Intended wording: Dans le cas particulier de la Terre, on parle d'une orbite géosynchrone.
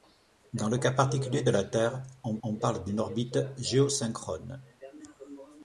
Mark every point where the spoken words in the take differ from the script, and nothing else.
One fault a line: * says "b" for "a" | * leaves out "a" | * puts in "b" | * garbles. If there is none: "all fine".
* puts in "on"